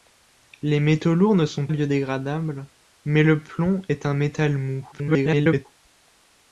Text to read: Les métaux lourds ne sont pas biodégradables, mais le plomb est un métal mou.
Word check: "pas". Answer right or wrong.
wrong